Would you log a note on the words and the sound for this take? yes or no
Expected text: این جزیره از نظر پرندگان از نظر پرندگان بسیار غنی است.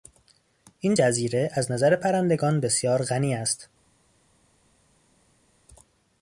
yes